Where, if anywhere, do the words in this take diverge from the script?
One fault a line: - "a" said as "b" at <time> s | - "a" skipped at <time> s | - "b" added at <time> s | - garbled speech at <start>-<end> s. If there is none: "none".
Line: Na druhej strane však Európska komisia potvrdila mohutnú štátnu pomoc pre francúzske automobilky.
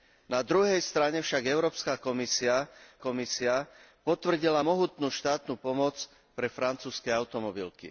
- "komisia" added at 3.0 s